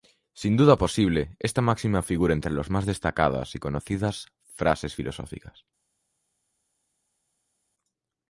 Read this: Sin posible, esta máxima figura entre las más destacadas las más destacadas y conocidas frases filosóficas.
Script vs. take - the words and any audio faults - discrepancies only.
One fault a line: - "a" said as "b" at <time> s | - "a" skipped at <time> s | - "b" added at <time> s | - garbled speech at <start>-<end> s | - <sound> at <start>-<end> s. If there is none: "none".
- "duda" added at 0.6 s
- "las más destacadas" skipped at 3.5 s